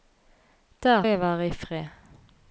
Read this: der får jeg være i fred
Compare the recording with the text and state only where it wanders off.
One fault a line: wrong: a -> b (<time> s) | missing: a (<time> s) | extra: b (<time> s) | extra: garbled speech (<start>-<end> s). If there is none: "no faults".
missing: får (1.1 s)